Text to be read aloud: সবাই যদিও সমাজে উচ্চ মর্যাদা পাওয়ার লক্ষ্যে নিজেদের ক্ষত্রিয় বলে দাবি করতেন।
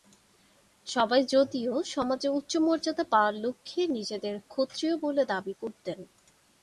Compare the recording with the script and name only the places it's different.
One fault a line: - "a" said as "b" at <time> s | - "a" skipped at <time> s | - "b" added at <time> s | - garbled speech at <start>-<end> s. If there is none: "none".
none